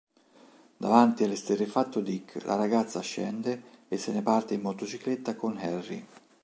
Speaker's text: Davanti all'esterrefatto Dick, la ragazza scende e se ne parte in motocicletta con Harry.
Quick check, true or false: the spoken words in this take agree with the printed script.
true